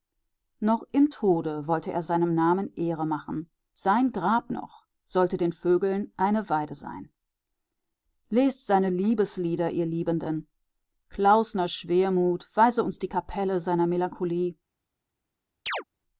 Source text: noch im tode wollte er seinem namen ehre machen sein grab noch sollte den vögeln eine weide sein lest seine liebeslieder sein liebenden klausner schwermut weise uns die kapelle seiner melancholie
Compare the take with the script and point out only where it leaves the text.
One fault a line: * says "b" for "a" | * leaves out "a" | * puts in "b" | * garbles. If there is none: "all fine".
* says "ihr" for "sein"